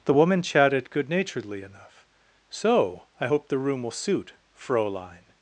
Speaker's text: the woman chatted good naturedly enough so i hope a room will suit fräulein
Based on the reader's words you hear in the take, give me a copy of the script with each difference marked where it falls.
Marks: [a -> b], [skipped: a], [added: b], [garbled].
the woman chatted good naturedly enough so i hope [a -> the] room will suit fräulein